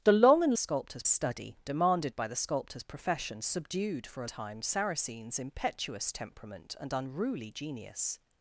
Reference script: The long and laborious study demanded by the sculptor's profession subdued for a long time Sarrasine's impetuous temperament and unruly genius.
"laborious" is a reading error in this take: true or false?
true